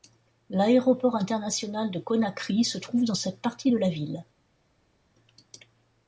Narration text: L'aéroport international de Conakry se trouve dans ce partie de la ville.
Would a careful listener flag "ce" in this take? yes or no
yes